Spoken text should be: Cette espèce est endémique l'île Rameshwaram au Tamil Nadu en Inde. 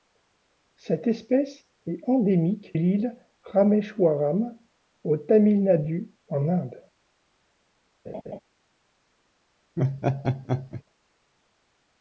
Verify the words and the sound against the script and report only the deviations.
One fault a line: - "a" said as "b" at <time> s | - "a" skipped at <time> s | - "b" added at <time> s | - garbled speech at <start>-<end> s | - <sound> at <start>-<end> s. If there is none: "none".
- laugh at 8.1-8.4 s
- laugh at 9.8-10.8 s